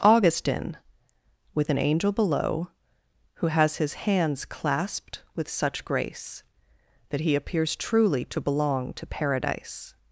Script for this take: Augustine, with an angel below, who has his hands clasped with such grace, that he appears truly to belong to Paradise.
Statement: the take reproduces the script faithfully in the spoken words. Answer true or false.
true